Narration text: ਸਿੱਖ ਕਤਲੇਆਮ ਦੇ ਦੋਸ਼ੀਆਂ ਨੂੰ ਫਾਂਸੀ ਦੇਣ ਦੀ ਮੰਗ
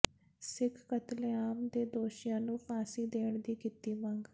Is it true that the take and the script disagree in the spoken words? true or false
true